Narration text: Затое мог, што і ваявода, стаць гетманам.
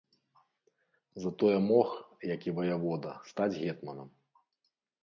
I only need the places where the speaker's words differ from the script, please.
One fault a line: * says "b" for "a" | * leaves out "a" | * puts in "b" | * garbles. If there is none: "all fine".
* says "як" for "што"